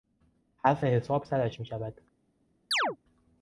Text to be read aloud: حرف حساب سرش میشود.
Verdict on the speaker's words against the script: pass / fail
pass